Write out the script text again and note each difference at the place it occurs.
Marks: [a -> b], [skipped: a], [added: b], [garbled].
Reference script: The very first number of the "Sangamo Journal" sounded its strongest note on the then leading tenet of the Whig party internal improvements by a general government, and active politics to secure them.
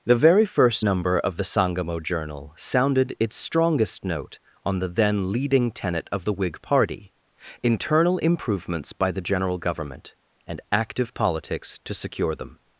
The very first number of the "Sangamo Journal" sounded its strongest note on the then leading tenet of the Whig party internal improvements by [a -> the] general government, and active politics to secure them.